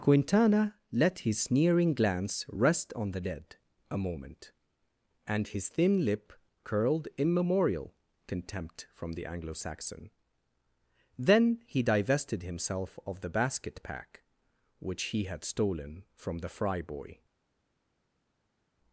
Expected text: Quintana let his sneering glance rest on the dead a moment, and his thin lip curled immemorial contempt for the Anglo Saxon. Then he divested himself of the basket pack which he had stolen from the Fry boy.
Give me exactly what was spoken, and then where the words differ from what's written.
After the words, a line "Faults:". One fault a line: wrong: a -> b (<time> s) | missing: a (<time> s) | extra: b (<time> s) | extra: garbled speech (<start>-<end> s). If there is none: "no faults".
Quintana let his sneering glance rest on the dead a moment, and his thin lip curled immemorial contempt from the Anglo Saxon. Then he divested himself of the basket pack which he had stolen from the Fry boy.
Faults:
wrong: for -> from (8.9 s)